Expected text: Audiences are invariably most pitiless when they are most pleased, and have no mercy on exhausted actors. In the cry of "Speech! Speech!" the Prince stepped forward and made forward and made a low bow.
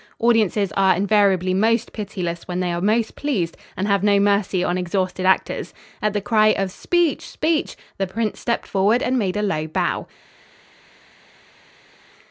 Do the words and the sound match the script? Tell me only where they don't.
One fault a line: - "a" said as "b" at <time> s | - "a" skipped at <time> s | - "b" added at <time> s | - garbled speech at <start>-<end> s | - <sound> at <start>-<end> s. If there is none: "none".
- "In" said as "At" at 6.0 s
- "forward and made" skipped at 9.3 s